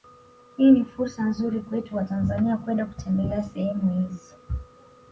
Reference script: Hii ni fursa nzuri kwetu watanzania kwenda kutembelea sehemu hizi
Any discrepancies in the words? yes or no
no